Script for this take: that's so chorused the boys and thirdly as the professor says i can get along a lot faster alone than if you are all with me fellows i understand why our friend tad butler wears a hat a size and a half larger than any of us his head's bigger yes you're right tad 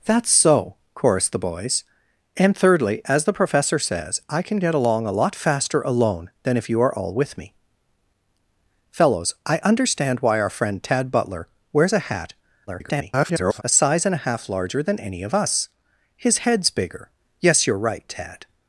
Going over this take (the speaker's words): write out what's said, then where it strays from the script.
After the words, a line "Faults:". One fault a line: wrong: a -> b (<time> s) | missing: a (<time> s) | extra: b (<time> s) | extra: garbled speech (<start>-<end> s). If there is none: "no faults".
that's so chorused the boys and thirdly as the professor says i can get along a lot faster alone than if you are all with me fellows i understand why our friend tad butler wears a hat [garbled] a size and a half larger than any of us his head's bigger yes you're right tad
Faults:
extra: garbled speech (12.7-13.6 s)